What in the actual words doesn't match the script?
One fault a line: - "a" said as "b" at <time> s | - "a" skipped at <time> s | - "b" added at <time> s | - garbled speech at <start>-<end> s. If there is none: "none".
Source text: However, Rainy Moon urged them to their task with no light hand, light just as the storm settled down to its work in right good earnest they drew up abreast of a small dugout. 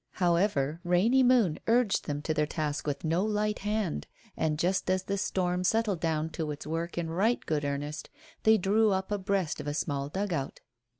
- "light" said as "and" at 4.3 s